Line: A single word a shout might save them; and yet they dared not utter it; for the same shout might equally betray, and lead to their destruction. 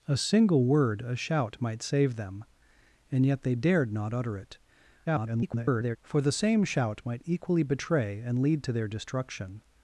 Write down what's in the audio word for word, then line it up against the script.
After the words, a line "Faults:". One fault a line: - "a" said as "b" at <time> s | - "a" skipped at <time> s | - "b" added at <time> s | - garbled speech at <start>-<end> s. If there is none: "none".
A single word a shout might save them; and yet they dared not utter it; [garbled] for the same shout might equally betray, and lead to their destruction.
Faults:
- garbled speech at 5.1-6.0 s